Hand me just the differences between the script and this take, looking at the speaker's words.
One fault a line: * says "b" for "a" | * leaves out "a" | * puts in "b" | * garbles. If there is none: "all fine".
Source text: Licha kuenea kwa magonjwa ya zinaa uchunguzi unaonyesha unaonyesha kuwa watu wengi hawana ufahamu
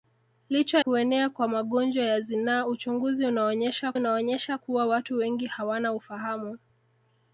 all fine